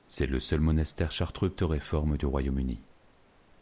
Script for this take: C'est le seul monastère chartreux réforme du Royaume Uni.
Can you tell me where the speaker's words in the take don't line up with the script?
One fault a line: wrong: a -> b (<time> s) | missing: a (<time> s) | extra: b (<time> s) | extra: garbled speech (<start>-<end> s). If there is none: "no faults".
no faults